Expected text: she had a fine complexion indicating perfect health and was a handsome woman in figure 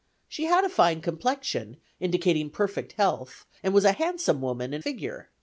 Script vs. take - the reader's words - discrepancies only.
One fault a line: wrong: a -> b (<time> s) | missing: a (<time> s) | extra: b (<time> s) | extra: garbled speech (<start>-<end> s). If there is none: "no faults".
no faults